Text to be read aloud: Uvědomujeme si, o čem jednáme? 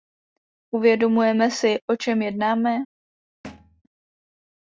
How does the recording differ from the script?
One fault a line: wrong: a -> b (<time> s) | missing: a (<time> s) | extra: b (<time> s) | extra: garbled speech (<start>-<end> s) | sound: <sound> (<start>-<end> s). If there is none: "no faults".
sound: thud (3.4-3.8 s)